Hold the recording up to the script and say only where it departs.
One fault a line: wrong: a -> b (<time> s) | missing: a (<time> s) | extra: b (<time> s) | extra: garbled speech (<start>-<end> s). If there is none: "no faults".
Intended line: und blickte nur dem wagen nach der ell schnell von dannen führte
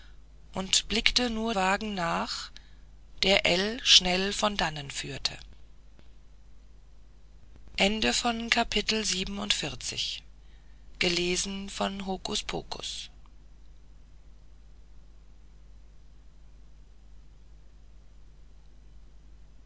missing: dem (1.5 s)